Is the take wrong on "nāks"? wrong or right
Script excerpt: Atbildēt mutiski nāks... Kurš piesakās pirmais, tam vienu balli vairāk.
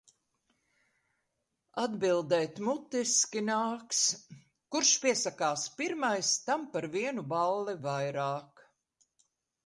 right